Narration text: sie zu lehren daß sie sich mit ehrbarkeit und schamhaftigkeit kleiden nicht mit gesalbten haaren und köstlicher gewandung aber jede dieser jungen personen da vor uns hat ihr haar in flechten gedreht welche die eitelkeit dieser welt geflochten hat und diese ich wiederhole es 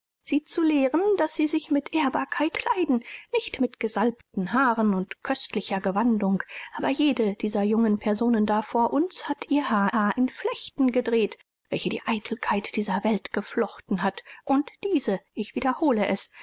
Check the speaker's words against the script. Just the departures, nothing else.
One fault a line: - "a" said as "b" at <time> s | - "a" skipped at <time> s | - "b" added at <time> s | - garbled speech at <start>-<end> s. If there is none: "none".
- "und schamhaftigkeit" skipped at 2.6 s
- "haar" added at 9.9 s